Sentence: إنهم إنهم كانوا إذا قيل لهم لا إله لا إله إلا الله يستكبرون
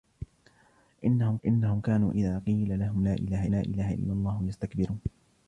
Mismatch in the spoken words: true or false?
false